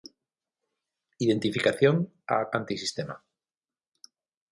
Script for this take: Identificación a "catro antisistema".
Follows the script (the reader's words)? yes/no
no